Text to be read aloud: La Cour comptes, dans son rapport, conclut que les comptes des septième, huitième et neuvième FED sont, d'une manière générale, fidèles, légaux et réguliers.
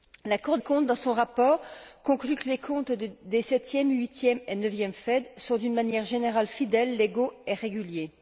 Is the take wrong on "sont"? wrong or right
right